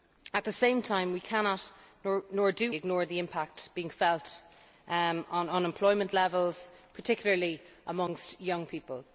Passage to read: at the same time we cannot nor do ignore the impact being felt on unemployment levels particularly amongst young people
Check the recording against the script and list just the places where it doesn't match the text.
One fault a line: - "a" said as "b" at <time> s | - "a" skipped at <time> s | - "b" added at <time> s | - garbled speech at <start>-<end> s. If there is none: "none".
none